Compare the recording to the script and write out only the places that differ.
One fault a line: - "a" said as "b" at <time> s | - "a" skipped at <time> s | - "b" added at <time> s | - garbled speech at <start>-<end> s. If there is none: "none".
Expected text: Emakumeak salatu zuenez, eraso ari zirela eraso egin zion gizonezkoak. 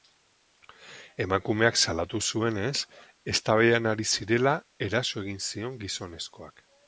- "eraso" said as "eztabaidan" at 3.4 s